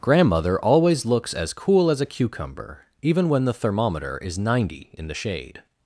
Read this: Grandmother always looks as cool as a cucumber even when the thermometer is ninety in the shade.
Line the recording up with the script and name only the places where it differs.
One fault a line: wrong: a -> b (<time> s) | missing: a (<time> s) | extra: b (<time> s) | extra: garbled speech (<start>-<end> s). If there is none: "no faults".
no faults